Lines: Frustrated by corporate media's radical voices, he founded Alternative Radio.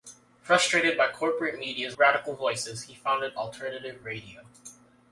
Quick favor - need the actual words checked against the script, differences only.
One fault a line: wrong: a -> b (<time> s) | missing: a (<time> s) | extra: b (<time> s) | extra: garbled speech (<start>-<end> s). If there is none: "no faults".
no faults